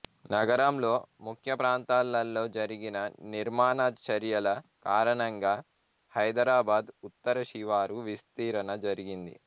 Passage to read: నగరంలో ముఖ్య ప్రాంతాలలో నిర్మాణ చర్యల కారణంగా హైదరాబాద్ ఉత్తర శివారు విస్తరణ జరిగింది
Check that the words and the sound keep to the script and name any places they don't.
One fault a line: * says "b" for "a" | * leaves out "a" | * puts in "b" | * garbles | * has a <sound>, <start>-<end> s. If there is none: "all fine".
* puts in "జరిగిన"